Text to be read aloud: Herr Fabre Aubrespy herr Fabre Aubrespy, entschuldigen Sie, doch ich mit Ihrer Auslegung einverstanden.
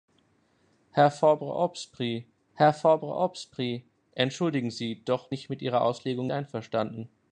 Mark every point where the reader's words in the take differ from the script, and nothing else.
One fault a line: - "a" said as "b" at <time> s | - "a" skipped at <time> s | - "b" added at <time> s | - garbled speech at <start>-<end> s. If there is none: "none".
none